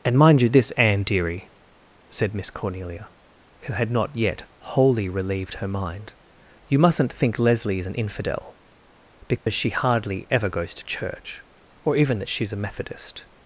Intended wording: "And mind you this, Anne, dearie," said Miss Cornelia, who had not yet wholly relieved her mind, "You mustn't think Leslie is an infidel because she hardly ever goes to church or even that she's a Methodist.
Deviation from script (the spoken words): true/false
false